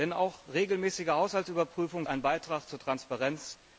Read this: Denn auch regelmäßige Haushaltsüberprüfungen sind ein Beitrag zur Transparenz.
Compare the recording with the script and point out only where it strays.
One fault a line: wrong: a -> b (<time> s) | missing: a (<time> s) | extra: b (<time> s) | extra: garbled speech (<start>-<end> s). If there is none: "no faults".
missing: sind (2.1 s)